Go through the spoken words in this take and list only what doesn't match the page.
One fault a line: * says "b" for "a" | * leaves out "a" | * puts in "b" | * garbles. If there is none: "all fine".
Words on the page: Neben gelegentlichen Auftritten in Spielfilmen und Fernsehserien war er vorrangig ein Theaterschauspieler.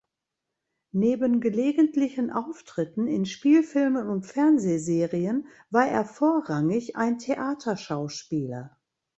all fine